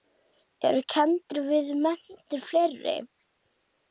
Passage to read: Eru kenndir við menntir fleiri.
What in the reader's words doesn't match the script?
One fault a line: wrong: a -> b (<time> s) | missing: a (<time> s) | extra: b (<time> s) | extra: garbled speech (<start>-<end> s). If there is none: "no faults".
no faults